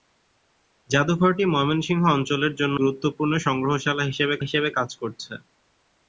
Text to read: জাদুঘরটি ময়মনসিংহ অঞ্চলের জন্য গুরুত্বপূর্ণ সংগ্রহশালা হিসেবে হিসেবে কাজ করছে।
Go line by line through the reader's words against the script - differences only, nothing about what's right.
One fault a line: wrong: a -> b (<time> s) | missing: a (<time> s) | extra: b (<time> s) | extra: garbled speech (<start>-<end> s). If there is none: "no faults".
no faults